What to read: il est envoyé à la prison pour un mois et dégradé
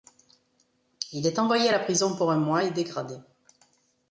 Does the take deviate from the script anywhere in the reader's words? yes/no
no